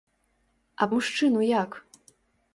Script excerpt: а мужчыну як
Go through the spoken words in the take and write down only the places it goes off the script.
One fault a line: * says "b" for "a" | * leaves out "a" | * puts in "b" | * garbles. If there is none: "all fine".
all fine